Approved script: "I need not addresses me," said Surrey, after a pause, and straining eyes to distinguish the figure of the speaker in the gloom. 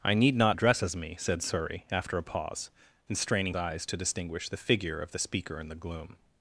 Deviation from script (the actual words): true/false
false